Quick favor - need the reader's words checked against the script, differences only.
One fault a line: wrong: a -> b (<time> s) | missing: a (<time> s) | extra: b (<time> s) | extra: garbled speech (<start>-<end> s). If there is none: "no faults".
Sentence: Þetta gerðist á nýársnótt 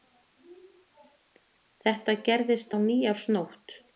no faults